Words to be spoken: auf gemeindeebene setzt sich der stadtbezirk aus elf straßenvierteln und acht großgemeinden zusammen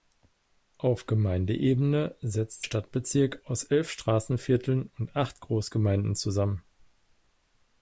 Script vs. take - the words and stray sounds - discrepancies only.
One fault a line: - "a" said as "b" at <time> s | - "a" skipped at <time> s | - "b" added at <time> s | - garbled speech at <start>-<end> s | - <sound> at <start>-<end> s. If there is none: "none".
- "sich der" skipped at 2.6 s